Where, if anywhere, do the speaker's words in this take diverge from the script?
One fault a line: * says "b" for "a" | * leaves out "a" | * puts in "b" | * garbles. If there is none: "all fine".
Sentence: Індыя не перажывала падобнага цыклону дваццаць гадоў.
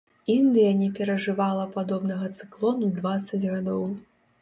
all fine